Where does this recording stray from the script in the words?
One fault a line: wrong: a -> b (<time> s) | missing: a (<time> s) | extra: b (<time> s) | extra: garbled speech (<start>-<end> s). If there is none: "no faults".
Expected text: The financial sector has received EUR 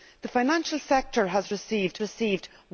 extra: received (2.0 s)